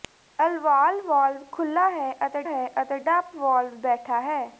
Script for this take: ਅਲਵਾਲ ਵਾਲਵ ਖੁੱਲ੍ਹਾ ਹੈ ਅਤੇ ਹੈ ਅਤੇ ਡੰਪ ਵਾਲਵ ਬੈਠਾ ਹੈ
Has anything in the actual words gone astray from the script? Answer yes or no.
no